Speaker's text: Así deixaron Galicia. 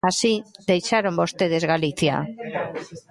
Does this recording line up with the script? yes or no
no